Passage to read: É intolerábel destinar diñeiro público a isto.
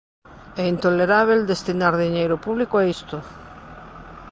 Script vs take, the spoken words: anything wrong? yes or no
no